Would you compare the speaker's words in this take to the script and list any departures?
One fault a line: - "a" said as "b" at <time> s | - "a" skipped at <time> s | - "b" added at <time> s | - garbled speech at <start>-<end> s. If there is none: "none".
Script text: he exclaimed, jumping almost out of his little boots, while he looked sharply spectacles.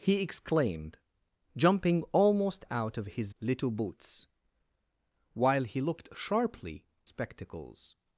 none